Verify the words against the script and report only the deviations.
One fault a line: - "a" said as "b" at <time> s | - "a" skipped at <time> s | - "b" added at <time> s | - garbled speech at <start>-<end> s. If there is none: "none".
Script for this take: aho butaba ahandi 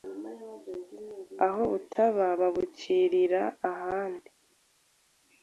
- "babucirira" added at 2.4 s